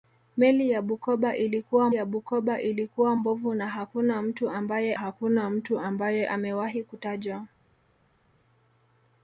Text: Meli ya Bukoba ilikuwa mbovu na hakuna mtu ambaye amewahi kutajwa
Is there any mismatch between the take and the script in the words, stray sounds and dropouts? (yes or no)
yes